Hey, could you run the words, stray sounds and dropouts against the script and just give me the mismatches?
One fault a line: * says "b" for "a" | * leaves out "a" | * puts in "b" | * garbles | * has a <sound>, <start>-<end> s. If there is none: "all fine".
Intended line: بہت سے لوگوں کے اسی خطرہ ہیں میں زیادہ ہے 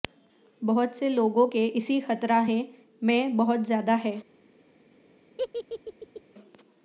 * puts in "بہت"
* has a laugh, 5.4-6.2 s